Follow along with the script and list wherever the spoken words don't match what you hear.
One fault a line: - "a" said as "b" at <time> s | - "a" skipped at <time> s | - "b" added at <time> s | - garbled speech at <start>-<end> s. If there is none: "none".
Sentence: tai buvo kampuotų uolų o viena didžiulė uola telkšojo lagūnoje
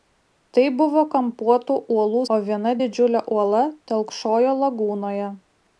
none